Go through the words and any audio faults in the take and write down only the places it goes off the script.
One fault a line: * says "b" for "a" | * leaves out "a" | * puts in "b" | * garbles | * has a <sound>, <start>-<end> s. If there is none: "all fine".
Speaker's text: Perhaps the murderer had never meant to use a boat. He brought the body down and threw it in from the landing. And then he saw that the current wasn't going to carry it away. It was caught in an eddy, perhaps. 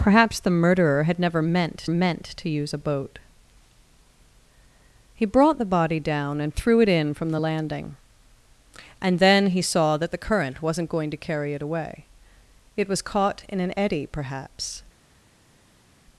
* puts in "meant"